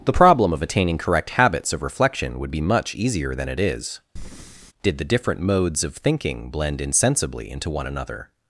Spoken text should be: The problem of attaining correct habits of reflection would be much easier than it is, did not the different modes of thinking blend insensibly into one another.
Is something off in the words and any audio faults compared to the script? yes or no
yes